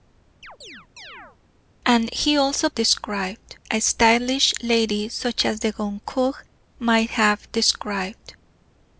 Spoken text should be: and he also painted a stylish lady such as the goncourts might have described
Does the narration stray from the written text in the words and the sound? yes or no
yes